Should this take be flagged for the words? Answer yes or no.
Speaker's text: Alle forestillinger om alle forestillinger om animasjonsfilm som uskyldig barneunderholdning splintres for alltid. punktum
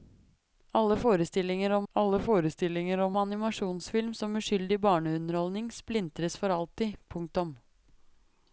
no